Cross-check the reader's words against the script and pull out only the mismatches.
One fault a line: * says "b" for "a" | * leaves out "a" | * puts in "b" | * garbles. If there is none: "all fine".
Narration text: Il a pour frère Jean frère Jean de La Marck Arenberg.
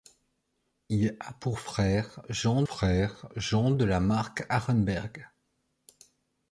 all fine